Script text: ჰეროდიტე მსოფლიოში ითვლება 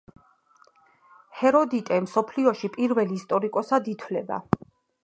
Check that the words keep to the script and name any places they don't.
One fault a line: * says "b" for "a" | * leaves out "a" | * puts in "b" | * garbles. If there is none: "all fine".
* puts in "პირველ ისტორიკოსად"